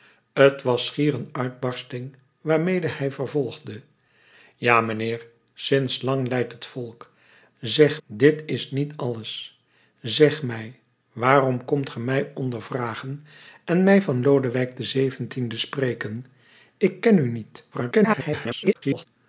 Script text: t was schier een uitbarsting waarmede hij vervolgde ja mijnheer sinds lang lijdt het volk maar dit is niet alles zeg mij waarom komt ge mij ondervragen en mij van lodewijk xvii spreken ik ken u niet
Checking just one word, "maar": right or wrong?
wrong